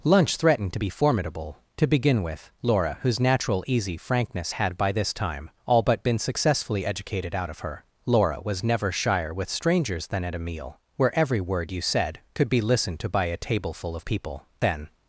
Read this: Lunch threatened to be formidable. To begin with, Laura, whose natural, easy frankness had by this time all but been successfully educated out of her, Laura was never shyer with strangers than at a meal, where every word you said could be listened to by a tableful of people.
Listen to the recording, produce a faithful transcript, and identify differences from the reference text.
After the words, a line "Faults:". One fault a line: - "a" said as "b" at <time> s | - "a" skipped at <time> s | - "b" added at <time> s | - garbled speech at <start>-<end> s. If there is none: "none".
Lunch threatened to be formidable. To begin with, Laura, whose natural, easy frankness had by this time all but been successfully educated out of her, Laura was never shyer with strangers than at a meal, where every word you said could be listened to by a tableful of people. Then
Faults:
- "Then" added at 14.6 s